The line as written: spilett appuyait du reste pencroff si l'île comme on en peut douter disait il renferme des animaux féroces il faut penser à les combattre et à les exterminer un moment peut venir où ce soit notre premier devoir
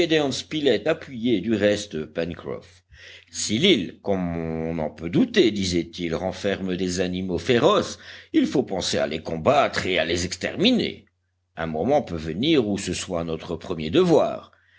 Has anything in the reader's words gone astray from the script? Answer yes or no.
no